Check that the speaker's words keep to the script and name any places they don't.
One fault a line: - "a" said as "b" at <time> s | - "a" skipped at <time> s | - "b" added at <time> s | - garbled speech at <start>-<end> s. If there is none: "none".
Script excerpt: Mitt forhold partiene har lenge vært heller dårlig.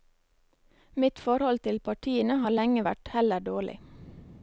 - "til" added at 1.7 s